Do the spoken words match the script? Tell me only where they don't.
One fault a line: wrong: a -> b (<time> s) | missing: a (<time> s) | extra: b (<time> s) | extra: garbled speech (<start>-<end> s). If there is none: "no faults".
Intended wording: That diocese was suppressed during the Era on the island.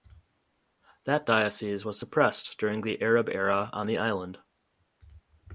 extra: Arab (3.0 s)